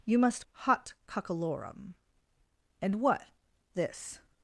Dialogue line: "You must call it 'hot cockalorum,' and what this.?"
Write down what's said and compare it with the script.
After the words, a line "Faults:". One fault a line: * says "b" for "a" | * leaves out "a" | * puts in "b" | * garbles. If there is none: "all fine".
"You must 'hot cockalorum,' and what this.?"
Faults:
* leaves out "call it"